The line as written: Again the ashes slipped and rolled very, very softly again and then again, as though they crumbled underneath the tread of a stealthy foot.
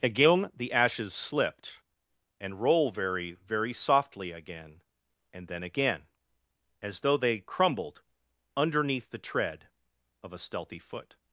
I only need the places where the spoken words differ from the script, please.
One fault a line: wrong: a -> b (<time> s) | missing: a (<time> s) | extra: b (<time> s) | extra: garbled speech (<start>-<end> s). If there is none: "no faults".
wrong: rolled -> roll (2.6 s)